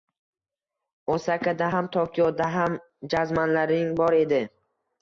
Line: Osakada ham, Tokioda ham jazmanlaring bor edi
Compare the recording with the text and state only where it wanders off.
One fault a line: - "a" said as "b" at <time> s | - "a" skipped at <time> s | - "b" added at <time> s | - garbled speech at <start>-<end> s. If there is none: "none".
none